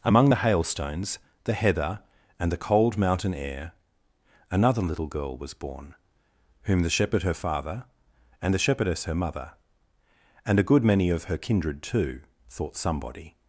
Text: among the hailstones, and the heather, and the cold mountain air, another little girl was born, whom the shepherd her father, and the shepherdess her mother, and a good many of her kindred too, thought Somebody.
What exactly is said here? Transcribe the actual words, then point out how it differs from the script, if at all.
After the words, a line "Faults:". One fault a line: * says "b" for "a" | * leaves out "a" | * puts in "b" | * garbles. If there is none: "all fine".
among the hailstones, the heather, and the cold mountain air, another little girl was born, whom the shepherd her father, and the shepherdess her mother, and a good many of her kindred too, thought Somebody.
Faults:
* leaves out "and"